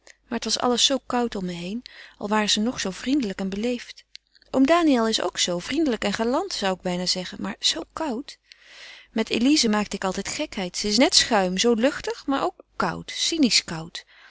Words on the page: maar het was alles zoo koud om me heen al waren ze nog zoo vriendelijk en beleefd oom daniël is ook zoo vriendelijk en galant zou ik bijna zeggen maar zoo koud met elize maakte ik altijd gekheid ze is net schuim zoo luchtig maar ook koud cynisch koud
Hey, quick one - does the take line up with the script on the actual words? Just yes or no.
yes